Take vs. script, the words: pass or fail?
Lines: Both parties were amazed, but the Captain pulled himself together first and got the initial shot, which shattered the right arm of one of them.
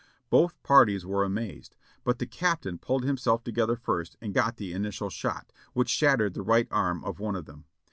pass